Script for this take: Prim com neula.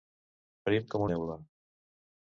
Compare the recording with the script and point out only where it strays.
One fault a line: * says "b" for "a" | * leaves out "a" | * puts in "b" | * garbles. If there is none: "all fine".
all fine